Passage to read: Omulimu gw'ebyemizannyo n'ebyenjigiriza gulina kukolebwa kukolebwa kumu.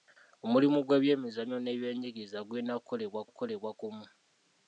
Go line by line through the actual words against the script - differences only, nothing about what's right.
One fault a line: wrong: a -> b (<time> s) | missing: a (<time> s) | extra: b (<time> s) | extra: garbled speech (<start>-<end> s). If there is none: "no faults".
no faults